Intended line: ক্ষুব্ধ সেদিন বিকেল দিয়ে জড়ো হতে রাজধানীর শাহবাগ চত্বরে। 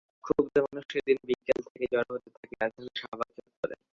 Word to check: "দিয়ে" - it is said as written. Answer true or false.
false